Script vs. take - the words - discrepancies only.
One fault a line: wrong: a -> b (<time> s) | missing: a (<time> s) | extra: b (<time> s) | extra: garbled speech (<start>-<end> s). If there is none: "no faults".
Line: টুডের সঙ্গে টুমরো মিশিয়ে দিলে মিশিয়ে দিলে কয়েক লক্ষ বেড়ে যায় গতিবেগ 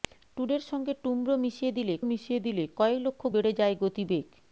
no faults